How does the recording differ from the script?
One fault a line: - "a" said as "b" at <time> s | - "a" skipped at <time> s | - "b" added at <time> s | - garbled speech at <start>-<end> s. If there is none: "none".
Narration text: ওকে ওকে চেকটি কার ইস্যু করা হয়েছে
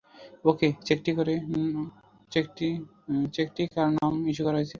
- "ওকে" skipped at 0.7 s
- "নামে" added at 4.0 s